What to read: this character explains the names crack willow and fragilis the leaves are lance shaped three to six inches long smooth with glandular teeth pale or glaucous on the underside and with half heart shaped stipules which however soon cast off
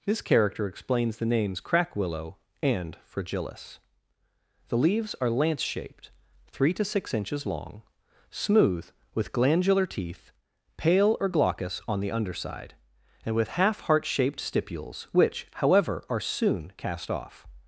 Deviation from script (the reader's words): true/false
true